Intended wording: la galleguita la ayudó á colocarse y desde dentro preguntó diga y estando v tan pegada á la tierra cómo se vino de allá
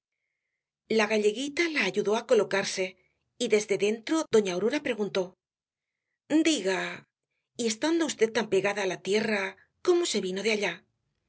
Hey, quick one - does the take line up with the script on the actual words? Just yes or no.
no